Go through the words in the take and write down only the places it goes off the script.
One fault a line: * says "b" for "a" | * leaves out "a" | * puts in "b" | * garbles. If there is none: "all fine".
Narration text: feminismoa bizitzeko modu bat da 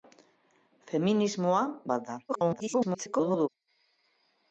* leaves out "bizitzeko modu"
* garbles